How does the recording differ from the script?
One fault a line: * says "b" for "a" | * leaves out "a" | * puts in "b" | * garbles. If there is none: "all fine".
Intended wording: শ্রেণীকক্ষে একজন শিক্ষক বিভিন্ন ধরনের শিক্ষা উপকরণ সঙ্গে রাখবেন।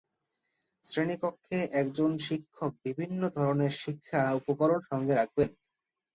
all fine